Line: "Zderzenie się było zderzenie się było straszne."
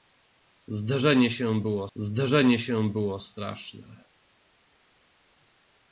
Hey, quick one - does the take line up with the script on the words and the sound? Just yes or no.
yes